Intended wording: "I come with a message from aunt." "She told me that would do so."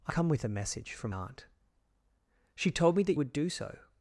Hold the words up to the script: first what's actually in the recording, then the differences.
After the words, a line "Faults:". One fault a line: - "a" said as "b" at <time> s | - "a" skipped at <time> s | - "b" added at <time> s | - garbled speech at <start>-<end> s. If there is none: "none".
"I come with a message from aunt." "She told me that would do so."
Faults:
none